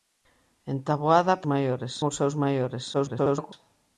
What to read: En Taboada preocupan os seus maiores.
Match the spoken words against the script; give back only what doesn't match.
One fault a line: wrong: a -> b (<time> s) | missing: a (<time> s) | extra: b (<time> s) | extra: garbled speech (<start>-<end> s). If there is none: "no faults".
wrong: preocupan -> maiores (1.5 s)
extra: garbled speech (2.9-3.5 s)